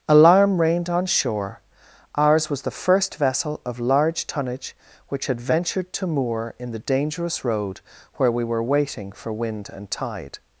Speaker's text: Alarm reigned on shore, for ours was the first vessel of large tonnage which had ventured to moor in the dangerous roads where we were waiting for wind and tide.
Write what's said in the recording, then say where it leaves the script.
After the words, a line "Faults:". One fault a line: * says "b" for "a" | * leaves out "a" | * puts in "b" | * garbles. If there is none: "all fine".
Alarm reigned on shore, ours was the first vessel of large tonnage which had ventured to moor in the dangerous road where we were waiting for wind and tide.
Faults:
* leaves out "for"
* says "road" for "roads"